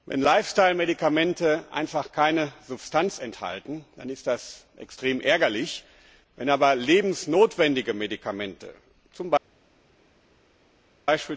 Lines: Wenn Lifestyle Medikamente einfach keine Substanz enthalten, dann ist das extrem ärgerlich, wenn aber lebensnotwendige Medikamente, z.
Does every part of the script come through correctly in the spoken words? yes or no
yes